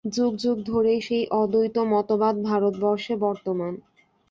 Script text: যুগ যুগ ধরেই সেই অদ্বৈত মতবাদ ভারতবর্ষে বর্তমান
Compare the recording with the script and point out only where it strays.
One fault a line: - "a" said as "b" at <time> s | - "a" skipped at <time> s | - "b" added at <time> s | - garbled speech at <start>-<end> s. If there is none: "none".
none